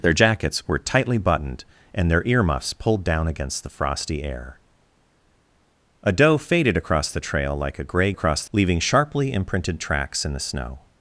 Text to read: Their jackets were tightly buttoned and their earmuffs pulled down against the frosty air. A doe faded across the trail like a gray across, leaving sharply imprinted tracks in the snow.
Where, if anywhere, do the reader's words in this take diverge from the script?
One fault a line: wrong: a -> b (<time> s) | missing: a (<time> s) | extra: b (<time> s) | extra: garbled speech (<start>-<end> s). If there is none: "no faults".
no faults